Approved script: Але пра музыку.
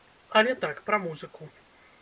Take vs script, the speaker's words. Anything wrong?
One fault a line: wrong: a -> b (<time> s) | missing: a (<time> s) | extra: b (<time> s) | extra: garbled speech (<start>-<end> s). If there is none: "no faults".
extra: так (0.6 s)